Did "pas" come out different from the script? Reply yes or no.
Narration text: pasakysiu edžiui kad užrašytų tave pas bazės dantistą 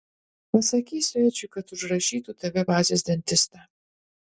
yes